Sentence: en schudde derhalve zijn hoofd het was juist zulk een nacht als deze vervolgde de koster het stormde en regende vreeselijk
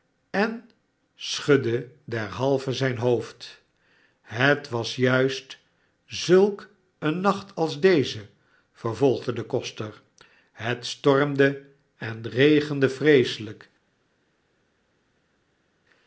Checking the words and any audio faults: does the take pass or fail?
pass